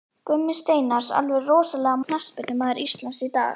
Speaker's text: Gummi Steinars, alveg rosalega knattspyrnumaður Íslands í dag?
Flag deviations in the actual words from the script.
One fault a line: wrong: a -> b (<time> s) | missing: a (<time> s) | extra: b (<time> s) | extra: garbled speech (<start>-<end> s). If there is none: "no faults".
no faults